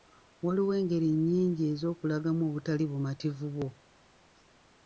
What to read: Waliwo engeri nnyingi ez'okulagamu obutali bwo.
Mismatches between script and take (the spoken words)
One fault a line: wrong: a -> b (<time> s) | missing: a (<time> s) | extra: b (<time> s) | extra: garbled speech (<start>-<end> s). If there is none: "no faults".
extra: bumativu (2.9 s)